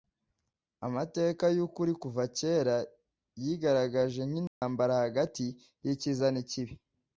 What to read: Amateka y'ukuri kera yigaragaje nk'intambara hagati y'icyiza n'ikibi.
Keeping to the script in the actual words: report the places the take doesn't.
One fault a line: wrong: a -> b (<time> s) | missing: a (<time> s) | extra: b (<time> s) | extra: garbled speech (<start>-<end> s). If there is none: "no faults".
extra: kuva (2.0 s)